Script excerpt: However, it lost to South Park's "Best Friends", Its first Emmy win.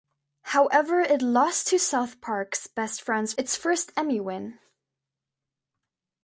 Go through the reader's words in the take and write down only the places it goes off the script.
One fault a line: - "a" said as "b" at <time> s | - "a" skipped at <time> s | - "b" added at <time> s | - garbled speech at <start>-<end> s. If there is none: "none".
none